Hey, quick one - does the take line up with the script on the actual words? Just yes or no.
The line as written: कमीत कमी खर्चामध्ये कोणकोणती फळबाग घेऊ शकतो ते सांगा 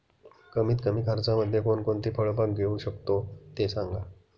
yes